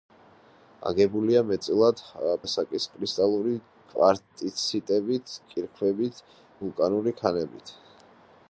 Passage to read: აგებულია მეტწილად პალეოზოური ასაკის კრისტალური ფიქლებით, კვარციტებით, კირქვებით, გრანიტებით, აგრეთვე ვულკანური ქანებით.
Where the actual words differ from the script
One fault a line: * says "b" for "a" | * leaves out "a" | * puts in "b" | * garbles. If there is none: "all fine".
* leaves out "პალეოზოური"
* leaves out "ფიქლებით"
* leaves out "გრანიტებით აგრეთვე"